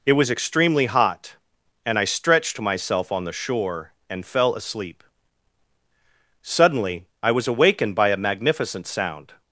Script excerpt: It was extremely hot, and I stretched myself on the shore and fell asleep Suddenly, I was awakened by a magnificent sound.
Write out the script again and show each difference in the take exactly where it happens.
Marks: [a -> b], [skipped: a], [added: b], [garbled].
It was extremely hot, and I stretched myself on the shore and fell asleep Suddenly, I was awakened by a magnificent sound.